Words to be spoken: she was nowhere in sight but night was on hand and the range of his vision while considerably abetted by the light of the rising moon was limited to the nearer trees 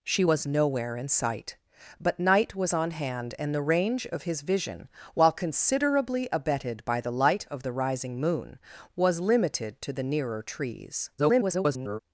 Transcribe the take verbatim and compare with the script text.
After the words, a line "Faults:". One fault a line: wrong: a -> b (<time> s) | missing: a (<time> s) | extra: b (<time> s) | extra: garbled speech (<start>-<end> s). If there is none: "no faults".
she was nowhere in sight but night was on hand and the range of his vision while considerably abetted by the light of the rising moon was limited to the nearer trees [garbled]
Faults:
extra: garbled speech (11.2-12.0 s)